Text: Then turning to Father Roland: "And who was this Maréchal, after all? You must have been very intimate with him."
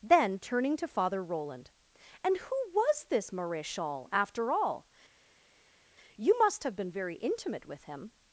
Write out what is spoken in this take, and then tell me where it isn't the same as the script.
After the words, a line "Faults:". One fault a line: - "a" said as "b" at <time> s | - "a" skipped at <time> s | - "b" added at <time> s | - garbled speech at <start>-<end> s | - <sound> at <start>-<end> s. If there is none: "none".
Then turning to Father Roland: "And who was this Maréchal, after all? You must have been very intimate with him."
Faults:
none